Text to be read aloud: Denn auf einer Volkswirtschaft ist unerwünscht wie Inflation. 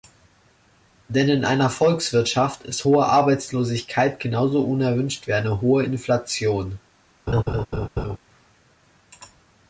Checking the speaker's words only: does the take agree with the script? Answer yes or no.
no